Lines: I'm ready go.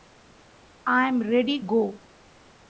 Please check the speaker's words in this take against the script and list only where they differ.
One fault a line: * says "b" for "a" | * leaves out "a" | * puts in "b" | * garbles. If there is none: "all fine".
all fine